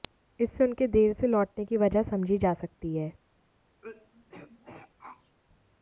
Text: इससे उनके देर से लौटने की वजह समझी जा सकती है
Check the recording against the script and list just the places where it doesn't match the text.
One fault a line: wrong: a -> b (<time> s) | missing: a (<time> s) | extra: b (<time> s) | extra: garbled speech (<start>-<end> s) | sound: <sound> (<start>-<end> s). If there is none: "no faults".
sound: throat clearing (3.8-5.4 s)